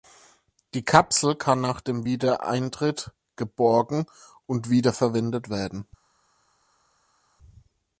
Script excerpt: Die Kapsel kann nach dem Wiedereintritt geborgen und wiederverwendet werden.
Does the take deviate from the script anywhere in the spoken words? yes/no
no